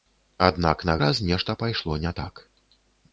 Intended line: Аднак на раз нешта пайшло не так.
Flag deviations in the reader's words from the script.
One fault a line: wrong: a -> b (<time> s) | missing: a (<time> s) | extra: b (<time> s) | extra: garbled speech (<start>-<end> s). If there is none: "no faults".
no faults